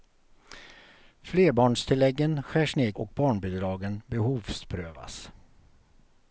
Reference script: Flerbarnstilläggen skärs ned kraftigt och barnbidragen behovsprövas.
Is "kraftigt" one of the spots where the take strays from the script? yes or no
yes